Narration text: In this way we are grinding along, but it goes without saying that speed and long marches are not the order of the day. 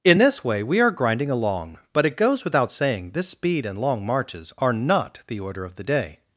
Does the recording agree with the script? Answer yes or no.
no